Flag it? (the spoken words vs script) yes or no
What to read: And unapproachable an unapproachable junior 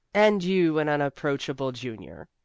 yes